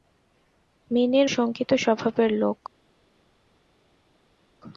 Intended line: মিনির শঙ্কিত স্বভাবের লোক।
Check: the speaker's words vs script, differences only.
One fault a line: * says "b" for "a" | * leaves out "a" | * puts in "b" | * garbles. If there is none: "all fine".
all fine